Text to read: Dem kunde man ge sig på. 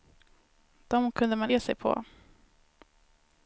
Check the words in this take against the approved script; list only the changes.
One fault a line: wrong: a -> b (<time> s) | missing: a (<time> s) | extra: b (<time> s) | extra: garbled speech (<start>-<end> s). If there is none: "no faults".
no faults